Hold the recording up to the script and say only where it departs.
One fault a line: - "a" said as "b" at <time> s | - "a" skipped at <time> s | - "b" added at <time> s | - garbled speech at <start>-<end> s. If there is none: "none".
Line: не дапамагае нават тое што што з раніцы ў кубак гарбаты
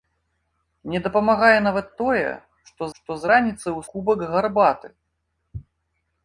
none